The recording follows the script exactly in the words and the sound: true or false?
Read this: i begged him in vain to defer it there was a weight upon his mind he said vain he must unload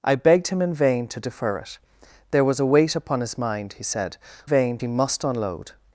true